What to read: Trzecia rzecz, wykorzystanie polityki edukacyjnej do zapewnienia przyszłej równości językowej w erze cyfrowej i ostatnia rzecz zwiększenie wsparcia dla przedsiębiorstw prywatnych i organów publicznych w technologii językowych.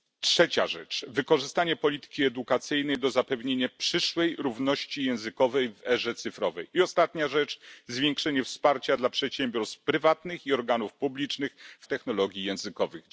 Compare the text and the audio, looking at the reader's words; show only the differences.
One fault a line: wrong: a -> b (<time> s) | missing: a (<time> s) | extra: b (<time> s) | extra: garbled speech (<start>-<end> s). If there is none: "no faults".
no faults